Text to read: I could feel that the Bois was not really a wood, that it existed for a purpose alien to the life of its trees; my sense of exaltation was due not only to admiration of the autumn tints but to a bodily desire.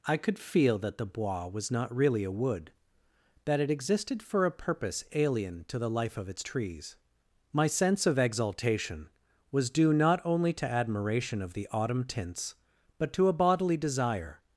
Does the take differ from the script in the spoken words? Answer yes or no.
no